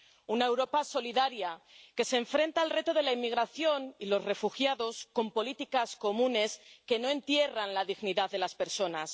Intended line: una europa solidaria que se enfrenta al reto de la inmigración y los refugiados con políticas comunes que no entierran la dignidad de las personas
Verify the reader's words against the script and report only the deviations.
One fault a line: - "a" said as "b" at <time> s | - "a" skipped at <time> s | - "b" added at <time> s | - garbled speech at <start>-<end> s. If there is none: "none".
none